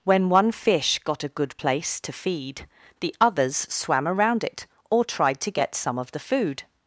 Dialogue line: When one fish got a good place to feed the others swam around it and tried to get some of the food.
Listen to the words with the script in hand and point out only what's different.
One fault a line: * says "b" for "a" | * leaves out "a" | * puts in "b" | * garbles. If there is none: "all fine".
* says "or" for "and"